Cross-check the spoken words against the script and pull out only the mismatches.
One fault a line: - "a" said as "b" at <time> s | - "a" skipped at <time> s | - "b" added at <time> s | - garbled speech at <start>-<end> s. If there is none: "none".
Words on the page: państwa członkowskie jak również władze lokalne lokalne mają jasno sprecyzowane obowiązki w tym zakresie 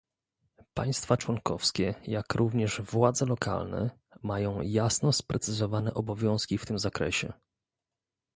- "lokalne" skipped at 4.0 s